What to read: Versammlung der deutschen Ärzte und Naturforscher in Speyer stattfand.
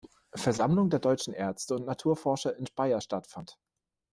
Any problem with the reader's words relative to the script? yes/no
no